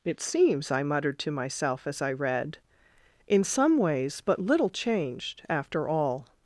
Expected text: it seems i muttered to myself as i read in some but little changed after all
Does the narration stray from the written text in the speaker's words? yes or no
yes